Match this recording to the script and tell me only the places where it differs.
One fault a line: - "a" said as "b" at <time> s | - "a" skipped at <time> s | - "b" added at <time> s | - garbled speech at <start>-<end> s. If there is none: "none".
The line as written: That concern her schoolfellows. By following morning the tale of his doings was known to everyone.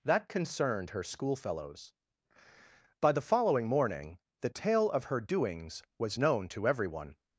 - "concern" said as "concerned" at 0.3 s
- "the" added at 3.1 s
- "his" said as "her" at 5.1 s